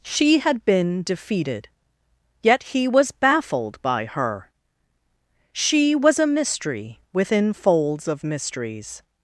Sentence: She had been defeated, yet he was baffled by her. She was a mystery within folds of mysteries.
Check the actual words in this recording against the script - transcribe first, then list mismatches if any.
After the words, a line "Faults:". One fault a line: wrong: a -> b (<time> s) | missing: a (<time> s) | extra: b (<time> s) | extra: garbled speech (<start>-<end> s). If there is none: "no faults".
She had been defeated, yet he was baffled by her. She was a mystery within folds of mysteries.
Faults:
no faults